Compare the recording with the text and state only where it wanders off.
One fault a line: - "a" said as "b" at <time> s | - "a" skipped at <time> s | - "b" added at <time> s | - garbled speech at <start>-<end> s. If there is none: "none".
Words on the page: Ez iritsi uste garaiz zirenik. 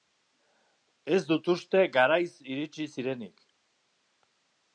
- "iritsi" said as "dut" at 1.3 s
- "iritsi" added at 2.5 s